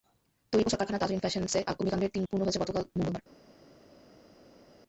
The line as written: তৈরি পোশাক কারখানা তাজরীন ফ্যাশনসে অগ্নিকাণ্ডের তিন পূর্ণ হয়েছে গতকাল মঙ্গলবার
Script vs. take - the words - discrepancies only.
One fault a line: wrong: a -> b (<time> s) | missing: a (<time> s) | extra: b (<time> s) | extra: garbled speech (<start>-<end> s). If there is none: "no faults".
no faults